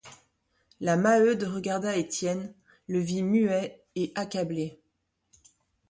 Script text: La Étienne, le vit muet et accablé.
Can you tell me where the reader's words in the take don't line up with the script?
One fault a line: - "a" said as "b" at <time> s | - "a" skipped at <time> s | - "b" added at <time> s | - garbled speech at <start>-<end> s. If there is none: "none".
- "Maheude regarda" added at 1.0 s